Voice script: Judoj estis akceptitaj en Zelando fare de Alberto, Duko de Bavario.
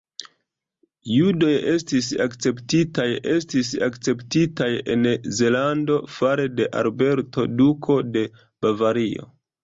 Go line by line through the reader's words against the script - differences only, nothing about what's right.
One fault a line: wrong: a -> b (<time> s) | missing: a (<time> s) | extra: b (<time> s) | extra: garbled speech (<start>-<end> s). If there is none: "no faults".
extra: estis akceptitaj (3.3 s)